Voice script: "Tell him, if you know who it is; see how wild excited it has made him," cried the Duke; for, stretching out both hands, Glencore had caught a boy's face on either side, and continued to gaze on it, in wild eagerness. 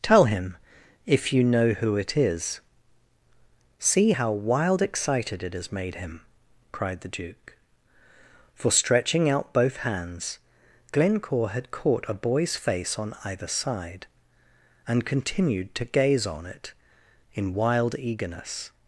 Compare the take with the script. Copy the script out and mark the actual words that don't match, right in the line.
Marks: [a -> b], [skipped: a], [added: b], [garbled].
"Tell him, if you know who it is; see how wild excited it has made him," cried the Duke; for, stretching out both hands, Glencore had caught a boy's face on either side, and continued to gaze on it, in wild eagerness.